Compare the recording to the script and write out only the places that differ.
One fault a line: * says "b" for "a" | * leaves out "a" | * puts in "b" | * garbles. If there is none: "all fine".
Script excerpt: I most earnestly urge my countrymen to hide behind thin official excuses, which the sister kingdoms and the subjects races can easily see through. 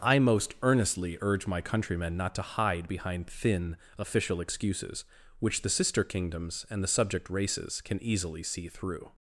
* puts in "not"
* says "subject" for "subjects"